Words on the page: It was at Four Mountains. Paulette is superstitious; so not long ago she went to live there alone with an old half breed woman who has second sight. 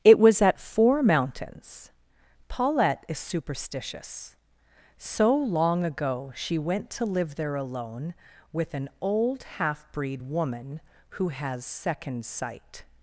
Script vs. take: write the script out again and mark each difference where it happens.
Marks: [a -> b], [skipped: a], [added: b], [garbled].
It was at Four Mountains. Paulette is superstitious; so [skipped: not] long ago she went to live there alone with an old half breed woman who has second sight.